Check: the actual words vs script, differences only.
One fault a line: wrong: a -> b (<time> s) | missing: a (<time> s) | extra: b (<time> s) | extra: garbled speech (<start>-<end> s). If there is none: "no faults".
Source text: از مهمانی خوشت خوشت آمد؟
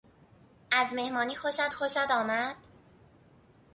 no faults